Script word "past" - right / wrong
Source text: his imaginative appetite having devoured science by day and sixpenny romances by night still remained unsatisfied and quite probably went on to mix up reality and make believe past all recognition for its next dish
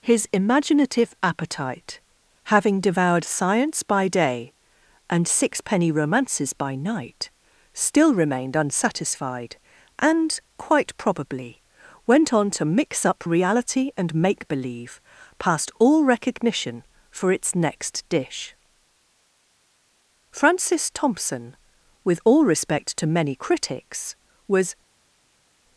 right